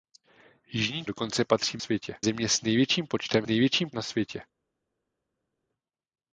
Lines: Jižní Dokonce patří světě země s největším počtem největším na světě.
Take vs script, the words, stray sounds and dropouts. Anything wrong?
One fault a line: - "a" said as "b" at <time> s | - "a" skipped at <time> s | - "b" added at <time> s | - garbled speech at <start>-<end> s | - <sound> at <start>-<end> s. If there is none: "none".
none